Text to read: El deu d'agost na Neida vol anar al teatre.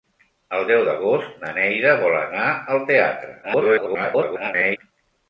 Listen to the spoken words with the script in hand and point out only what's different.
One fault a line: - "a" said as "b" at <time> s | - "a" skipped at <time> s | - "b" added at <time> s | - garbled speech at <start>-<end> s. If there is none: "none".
- garbled speech at 3.4-4.8 s